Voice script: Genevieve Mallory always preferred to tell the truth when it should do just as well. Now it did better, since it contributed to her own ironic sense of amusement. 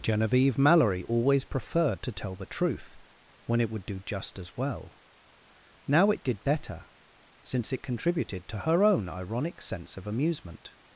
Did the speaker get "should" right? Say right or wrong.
wrong